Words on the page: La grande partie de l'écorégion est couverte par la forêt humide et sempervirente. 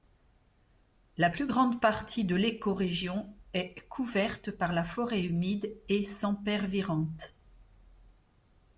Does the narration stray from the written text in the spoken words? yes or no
yes